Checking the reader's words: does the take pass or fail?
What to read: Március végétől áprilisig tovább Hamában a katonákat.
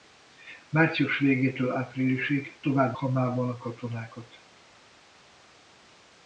pass